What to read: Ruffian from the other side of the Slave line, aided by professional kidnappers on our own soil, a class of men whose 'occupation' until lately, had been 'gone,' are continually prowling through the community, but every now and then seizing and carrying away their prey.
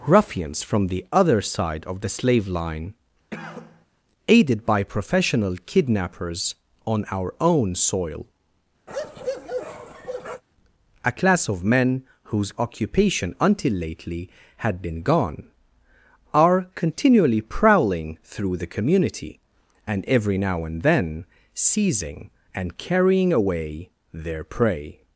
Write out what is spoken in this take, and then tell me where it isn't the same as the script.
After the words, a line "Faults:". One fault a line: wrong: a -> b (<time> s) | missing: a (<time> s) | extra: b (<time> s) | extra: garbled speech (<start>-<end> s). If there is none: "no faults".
Ruffians from the other side of the Slave line, aided by professional kidnappers on our own soil, a class of men whose 'occupation' until lately, had been 'gone,' are continually prowling through the community, and every now and then seizing and carrying away their prey.
Faults:
wrong: Ruffian -> Ruffians (0.1 s)
wrong: but -> and (19.9 s)